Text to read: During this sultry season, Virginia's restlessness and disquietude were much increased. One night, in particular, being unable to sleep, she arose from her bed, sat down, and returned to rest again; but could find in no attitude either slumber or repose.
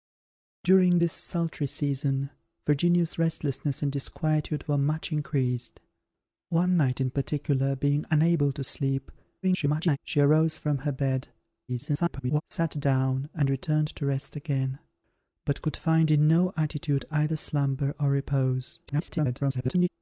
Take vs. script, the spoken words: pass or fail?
fail